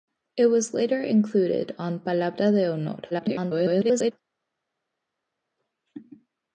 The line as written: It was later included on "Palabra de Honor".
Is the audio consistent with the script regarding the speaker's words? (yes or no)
no